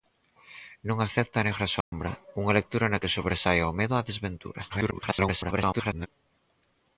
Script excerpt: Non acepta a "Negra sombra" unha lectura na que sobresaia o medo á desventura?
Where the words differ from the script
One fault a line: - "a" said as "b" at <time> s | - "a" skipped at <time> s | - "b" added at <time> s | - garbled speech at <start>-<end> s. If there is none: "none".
- garbled speech at 4.7-6.1 s